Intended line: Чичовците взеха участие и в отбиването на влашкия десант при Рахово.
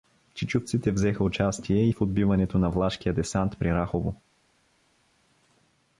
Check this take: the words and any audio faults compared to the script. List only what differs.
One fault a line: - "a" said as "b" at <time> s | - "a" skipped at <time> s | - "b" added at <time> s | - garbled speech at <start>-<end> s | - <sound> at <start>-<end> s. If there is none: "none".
none